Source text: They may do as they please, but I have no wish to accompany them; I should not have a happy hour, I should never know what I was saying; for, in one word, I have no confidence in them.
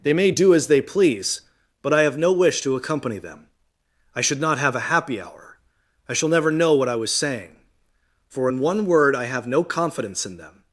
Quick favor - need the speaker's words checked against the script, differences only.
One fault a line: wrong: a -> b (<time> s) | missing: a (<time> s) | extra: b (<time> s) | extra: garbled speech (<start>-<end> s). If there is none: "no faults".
wrong: should -> shall (6.1 s)